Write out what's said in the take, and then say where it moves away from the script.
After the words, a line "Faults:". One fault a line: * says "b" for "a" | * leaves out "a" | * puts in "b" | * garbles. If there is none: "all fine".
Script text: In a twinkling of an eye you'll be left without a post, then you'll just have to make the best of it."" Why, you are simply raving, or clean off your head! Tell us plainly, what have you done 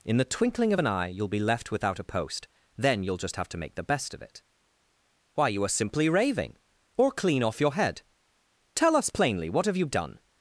In the twinkling of an eye you'll be left without a post, then you'll just have to make the best of it."" Why, you are simply raving, or clean off your head! Tell us plainly, what have you done
Faults:
* says "the" for "a"